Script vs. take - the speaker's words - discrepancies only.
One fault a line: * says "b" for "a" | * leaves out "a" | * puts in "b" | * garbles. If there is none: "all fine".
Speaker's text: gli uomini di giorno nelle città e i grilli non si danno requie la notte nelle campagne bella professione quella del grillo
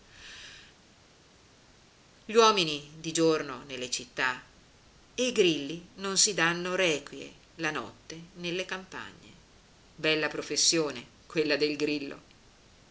all fine